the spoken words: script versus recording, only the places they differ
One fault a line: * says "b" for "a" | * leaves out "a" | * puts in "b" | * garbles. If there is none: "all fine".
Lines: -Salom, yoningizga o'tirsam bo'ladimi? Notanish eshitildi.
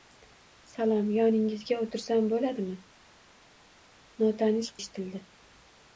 all fine